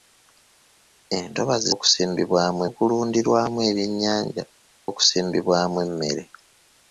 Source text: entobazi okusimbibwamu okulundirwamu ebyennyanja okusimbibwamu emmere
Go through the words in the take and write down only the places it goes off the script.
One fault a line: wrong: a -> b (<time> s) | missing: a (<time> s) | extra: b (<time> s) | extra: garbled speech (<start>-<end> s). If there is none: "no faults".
no faults